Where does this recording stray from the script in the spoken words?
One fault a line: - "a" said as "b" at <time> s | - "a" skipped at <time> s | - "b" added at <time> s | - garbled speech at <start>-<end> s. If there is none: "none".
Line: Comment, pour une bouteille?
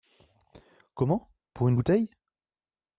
none